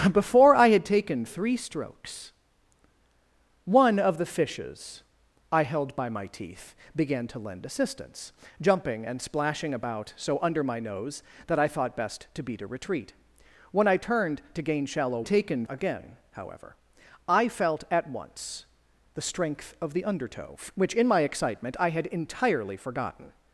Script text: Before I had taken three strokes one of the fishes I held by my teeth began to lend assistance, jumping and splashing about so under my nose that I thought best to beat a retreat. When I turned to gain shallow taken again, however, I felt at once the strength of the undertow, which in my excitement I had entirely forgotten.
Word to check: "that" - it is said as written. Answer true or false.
true